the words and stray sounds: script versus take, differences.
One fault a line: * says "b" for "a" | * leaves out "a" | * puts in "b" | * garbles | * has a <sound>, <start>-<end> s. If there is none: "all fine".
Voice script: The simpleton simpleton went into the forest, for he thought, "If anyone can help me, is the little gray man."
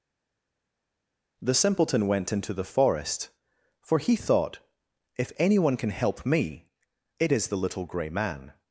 * leaves out "simpleton"
* puts in "it"